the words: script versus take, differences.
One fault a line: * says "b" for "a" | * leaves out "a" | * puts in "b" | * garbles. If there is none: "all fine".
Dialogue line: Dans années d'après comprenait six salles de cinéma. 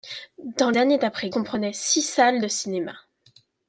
all fine